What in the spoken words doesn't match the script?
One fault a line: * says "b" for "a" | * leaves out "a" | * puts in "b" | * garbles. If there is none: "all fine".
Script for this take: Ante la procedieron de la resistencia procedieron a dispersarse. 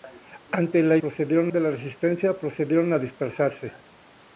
all fine